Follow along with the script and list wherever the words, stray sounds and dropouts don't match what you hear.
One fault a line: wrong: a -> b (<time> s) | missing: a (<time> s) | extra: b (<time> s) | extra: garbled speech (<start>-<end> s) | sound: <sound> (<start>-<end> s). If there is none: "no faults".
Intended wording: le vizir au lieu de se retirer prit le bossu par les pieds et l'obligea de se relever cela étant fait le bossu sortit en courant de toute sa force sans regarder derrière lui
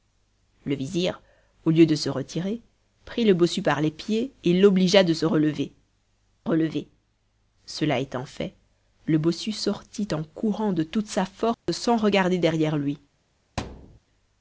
extra: relever (6.4 s)
sound: dropout (11.5-11.7 s)
sound: thud (13.6-14.0 s)